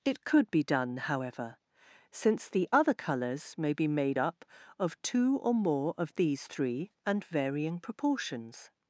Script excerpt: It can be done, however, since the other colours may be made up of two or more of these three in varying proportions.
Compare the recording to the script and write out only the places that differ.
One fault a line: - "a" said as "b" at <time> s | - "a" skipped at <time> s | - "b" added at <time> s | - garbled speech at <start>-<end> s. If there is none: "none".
- "can" said as "could" at 0.2 s
- "in" said as "and" at 7.1 s